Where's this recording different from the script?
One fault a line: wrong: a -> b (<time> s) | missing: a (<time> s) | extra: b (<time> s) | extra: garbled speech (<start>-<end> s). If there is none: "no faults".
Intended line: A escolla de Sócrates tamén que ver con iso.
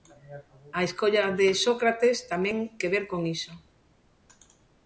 no faults